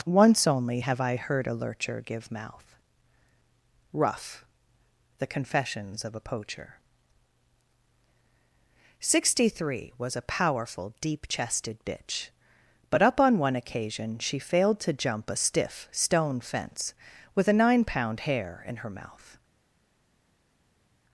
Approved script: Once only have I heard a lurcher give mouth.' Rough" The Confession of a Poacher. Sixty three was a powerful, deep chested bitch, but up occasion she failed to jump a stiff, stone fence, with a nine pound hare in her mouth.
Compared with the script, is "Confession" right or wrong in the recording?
wrong